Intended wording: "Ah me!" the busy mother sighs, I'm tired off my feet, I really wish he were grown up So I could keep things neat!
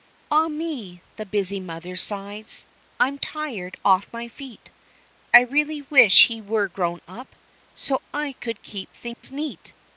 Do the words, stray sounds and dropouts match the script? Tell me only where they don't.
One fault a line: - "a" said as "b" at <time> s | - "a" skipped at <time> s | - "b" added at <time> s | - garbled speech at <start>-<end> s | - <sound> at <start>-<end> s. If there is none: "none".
- dropout at 9.1-9.2 s